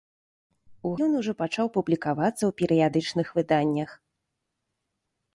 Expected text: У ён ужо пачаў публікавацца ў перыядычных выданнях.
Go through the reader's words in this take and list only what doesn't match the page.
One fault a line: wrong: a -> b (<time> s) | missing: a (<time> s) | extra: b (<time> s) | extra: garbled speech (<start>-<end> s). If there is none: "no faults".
no faults